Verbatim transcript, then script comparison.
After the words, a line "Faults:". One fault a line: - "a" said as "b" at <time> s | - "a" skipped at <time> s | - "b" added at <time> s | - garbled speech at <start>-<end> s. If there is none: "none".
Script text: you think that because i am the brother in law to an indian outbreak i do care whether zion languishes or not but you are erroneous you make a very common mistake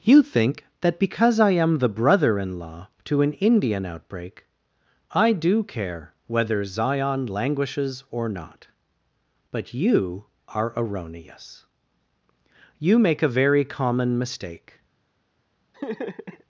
you think that because i am the brother in law to an indian outbreak i do care whether zion languishes or not but you are erroneous you make a very common mistake
Faults:
none